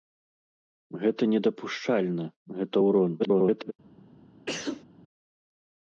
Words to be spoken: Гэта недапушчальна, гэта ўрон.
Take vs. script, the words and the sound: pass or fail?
fail